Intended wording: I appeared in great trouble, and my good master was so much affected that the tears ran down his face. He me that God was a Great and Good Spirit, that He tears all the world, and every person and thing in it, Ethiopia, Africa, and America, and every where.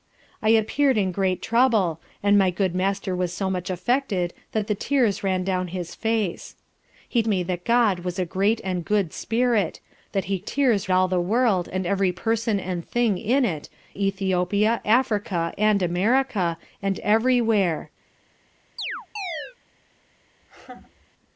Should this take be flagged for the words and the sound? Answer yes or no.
yes